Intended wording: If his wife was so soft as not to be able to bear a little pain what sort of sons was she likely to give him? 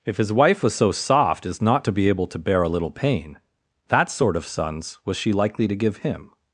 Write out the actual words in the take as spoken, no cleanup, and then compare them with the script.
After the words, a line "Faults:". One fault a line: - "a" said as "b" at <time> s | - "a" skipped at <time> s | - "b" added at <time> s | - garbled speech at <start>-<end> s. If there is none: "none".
If his wife was so soft as not to be able to bear a little pain that sort of sons was she likely to give him?
Faults:
- "what" said as "that" at 3.9 s